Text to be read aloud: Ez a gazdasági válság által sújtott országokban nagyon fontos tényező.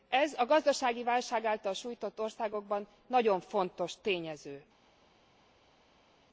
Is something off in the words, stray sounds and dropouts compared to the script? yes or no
no